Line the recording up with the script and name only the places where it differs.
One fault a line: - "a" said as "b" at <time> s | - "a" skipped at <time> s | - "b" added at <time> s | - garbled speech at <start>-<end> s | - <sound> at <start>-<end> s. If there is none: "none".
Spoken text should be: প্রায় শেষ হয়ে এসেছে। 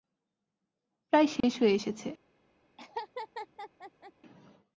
- dropout at 1.4-1.4 s
- laugh at 2.8-4.1 s